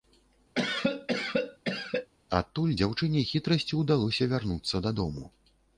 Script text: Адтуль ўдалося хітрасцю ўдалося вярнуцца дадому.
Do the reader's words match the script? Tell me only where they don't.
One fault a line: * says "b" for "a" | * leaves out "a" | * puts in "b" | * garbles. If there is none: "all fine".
* says "дзяўчыне" for "ўдалося"